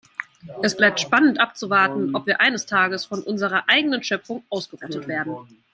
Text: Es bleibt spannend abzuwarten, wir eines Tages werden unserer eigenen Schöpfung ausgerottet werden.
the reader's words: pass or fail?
fail